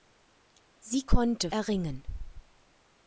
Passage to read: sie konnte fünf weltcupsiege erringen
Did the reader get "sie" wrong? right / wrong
right